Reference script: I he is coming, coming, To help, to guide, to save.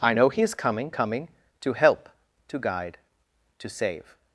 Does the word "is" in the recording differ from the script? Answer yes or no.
no